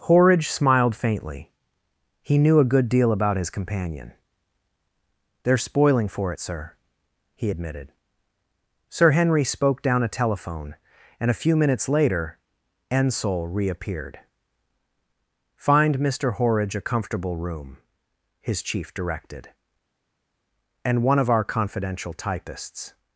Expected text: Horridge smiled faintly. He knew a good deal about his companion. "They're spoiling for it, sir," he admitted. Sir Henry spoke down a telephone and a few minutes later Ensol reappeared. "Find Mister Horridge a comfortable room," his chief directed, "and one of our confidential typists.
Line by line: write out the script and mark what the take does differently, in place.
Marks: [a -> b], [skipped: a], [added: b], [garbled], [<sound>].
Horridge smiled faintly. He knew a good deal about his companion. "They're spoiling for it, sir," he admitted. Sir Henry spoke down a telephone and a few minutes later Ensol reappeared. "Find Mister Horridge a comfortable room," his chief directed, "and one of our confidential typists.